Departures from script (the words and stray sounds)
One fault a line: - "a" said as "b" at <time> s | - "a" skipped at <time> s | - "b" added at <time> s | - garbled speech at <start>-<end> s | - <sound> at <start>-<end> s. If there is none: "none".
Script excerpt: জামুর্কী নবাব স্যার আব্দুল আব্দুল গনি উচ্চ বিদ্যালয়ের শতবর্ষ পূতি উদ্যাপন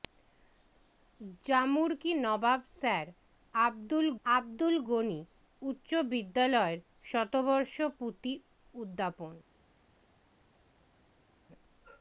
none